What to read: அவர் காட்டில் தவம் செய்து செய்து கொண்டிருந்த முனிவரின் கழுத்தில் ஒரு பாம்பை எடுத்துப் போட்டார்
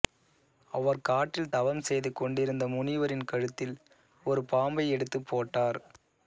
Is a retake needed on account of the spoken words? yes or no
yes